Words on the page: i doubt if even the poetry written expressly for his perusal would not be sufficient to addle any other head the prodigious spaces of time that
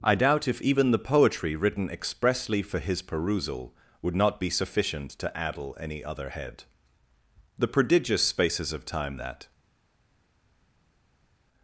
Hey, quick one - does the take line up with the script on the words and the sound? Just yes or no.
yes